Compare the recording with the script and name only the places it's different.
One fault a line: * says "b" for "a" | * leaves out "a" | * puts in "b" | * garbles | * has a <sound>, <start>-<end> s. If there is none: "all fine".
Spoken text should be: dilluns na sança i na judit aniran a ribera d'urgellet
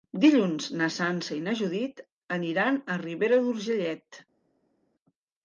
all fine